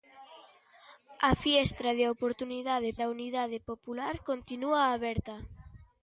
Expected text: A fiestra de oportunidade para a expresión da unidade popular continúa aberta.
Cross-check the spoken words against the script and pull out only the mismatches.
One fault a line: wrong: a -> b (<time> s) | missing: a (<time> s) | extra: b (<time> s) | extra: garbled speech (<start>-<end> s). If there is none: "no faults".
missing: para a expresión (2.9 s)